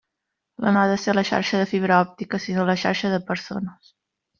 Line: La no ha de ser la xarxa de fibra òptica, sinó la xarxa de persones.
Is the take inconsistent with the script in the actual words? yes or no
no